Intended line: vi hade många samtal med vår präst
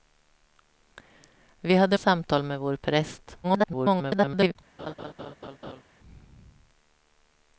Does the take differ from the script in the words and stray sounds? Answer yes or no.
yes